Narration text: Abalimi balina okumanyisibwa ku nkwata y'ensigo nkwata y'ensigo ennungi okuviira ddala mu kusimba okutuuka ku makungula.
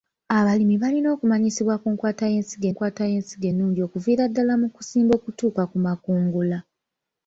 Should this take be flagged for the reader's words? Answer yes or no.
no